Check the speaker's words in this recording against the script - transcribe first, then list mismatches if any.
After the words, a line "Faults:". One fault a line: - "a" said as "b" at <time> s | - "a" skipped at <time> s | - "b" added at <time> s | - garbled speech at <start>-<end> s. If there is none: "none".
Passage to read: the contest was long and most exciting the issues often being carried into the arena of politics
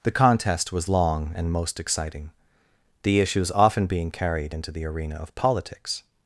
the contest was long and most exciting the issues often being carried into the arena of politics
Faults:
none